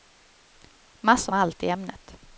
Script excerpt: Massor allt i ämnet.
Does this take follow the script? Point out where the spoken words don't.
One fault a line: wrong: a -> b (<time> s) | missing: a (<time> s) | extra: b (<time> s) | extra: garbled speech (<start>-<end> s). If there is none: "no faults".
no faults